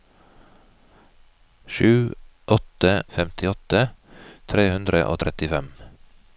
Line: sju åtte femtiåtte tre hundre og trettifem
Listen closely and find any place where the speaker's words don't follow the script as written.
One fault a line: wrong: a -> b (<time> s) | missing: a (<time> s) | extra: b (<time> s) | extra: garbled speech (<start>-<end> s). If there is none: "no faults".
no faults